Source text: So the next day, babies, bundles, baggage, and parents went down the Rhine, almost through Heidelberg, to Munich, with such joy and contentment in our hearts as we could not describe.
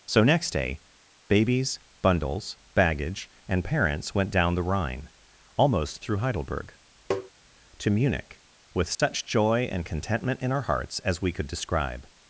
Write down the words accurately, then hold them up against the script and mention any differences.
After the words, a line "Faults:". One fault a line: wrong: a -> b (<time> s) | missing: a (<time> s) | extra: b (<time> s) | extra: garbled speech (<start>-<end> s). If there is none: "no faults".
So next day, babies, bundles, baggage, and parents went down the Rhine, almost through Heidelberg, to Munich, with such joy and contentment in our hearts as we could describe.
Faults:
missing: the (0.2 s)
missing: not (11.5 s)